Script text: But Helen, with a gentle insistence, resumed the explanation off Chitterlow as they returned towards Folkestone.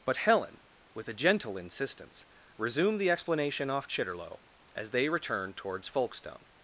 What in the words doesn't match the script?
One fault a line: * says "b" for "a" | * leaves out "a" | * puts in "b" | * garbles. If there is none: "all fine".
all fine